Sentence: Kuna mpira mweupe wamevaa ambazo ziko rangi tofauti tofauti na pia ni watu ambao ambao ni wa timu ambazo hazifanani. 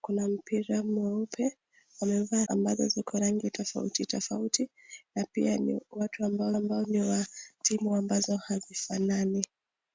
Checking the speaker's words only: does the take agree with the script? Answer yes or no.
yes